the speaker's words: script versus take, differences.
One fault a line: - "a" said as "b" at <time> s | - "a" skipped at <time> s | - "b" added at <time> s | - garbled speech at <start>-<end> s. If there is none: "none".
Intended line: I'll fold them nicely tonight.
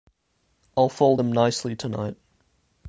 none